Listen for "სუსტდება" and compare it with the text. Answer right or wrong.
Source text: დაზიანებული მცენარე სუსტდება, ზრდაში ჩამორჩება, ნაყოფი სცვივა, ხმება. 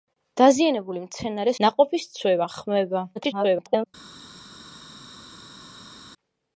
wrong